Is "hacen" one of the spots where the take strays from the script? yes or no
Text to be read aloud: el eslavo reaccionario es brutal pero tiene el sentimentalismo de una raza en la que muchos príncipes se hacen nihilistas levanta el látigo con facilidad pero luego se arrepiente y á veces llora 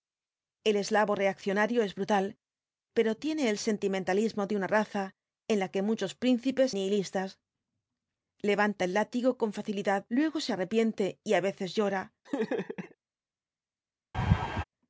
yes